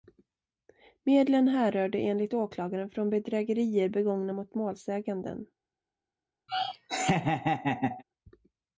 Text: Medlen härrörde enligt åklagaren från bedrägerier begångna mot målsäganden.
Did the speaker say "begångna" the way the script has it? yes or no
yes